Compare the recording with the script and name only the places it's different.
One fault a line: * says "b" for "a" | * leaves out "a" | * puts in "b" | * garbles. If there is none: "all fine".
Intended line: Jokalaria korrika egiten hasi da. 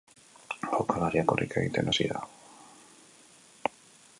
all fine